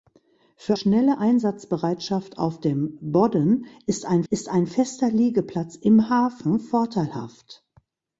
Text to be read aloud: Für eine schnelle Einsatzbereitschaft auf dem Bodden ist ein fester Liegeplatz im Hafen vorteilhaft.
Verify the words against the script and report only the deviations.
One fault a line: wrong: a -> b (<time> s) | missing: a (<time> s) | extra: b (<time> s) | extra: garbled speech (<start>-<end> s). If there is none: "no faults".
missing: eine (0.8 s)
extra: ist ein (4.3 s)